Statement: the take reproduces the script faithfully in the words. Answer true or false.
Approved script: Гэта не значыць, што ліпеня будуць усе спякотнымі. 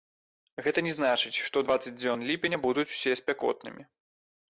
false